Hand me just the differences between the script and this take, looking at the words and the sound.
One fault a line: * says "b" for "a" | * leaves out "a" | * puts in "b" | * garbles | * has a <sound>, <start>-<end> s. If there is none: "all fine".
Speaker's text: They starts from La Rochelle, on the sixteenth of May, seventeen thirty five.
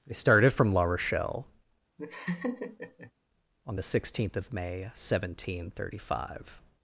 * says "started" for "starts"
* has a laugh, 2.0-3.1 s